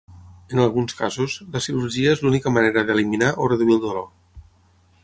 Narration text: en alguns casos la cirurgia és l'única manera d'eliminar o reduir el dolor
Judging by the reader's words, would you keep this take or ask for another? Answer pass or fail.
pass